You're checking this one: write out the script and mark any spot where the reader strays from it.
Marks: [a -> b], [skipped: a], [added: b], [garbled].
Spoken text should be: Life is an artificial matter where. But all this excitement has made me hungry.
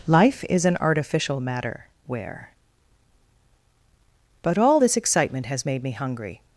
Life is an artificial matter where. But all this excitement has made me hungry.